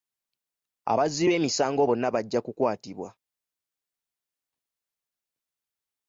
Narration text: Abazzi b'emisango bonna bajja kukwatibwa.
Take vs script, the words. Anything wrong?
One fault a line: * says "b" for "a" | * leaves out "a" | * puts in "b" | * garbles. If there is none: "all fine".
all fine